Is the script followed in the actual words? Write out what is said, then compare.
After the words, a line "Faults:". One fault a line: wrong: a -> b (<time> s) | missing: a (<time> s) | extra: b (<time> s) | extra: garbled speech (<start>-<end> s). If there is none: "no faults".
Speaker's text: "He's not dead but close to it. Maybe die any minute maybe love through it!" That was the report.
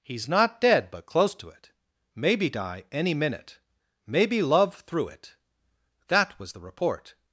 "He's not dead but close to it. Maybe die any minute maybe love through it!" That was the report.
Faults:
no faults